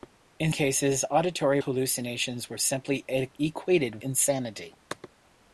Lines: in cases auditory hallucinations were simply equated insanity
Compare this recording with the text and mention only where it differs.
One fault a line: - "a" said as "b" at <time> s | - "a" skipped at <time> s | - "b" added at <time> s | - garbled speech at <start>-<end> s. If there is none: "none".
none